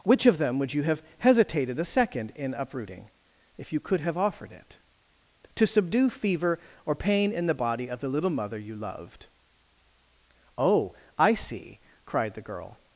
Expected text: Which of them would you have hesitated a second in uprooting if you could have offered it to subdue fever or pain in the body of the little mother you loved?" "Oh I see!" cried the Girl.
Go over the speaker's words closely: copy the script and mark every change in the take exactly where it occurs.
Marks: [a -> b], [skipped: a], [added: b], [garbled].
Which of them would you have hesitated a second in uprooting if you could have offered it to subdue fever or pain in the body of the little mother you loved?" "Oh I see!" cried the Girl.